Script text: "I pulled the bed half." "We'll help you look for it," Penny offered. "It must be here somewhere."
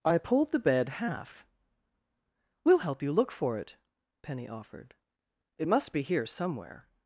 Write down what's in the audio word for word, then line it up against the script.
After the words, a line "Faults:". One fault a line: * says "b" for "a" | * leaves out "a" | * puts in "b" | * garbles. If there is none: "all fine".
"I pulled the bed half." "We'll help you look for it," Penny offered. "It must be here somewhere."
Faults:
all fine